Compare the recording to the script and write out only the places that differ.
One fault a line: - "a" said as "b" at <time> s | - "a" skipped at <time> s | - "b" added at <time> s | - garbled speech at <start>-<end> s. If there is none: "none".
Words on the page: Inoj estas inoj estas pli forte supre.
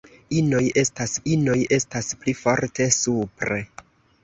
none